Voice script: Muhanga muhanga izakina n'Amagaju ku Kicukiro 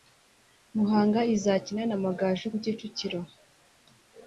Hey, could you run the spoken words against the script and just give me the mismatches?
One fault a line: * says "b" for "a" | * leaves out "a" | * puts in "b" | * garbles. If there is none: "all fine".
* leaves out "muhanga"